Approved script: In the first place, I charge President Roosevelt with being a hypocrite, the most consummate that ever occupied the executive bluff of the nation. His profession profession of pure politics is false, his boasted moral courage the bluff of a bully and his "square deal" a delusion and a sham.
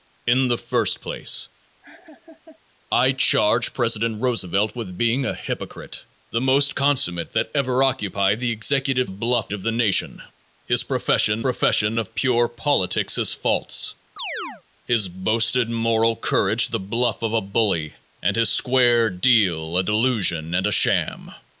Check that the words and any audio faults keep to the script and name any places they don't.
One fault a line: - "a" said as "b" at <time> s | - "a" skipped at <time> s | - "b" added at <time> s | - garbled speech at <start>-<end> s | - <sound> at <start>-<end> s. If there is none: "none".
- laugh at 1.8-2.6 s
- chirp at 14.2-14.6 s